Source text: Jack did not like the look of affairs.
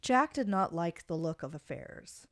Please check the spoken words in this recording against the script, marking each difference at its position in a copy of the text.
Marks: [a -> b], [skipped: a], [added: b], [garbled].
Jack did not like the look of affairs.